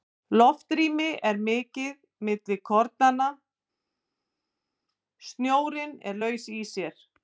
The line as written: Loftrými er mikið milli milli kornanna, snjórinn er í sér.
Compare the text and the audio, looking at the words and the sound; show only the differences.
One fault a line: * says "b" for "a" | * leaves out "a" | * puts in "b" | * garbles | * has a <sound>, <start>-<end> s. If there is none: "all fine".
* leaves out "milli"
* puts in "laus"